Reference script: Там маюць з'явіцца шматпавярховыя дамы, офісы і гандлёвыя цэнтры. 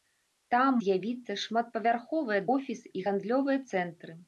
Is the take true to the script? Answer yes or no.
no